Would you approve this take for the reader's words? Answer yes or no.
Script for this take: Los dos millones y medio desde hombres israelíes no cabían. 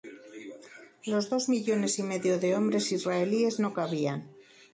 no